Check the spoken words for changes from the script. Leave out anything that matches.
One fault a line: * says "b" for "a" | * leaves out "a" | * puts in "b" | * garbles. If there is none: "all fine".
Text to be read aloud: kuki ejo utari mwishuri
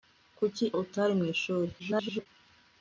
* leaves out "ejo"
* garbles